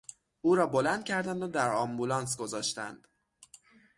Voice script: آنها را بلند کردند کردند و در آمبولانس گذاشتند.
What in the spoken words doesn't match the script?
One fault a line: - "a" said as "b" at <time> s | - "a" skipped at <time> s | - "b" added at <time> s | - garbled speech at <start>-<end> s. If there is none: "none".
- "آنها" said as "او" at 0.4 s
- "کردند" skipped at 1.4 s